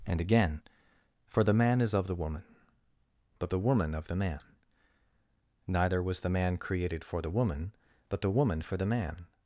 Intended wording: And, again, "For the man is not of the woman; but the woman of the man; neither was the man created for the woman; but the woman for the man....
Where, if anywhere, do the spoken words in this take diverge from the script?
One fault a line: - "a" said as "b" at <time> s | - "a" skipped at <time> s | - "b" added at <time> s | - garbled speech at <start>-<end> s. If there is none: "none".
- "not" skipped at 1.9 s